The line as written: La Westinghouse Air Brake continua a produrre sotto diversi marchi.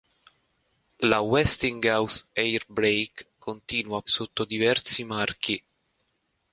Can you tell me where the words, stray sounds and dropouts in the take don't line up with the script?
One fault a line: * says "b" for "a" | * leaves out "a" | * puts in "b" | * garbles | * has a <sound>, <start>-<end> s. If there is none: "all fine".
* leaves out "produrre"